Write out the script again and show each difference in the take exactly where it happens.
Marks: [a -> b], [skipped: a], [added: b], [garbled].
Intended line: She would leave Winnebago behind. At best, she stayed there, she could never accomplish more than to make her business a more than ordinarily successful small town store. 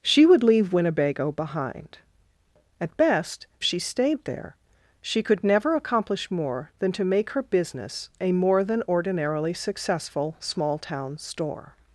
She would leave Winnebago behind. At best, she stayed there, she could never accomplish more than to make her business a more than ordinarily successful small town store.